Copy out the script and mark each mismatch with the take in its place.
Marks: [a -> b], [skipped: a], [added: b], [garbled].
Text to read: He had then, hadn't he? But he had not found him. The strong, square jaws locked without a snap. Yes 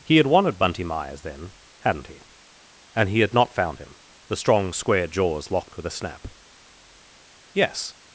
He had [added: wanted Bunty Myers] then, hadn't he? [But -> And] he had not found him. The strong, square jaws locked [without -> with] a snap. Yes